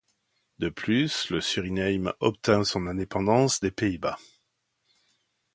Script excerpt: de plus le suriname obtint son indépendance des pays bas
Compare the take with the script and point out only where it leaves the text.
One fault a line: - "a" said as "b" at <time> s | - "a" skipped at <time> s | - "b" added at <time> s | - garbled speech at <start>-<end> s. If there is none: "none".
none